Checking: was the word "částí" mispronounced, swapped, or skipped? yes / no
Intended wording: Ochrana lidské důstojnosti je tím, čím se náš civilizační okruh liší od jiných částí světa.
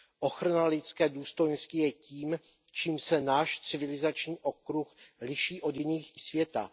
yes